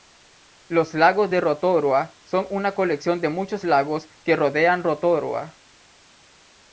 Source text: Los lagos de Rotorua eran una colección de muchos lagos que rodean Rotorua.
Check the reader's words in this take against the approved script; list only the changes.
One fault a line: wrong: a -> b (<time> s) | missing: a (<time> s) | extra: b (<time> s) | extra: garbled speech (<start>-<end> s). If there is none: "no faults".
wrong: eran -> son (2.2 s)